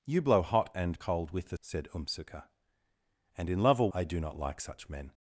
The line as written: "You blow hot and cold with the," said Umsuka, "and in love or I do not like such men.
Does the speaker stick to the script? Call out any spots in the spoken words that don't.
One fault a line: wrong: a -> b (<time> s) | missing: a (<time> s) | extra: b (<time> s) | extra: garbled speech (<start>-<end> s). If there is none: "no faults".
no faults